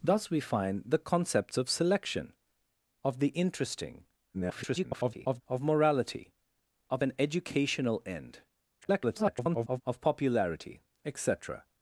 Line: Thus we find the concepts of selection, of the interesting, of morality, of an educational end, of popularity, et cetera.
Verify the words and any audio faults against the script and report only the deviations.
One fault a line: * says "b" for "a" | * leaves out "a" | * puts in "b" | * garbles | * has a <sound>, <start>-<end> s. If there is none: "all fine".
* garbles
* garbles